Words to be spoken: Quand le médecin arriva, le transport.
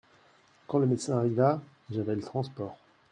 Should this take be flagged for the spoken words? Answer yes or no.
yes